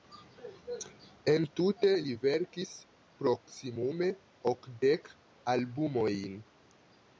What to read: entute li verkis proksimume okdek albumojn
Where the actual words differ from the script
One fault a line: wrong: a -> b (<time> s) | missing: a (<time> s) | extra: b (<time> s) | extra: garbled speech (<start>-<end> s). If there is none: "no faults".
no faults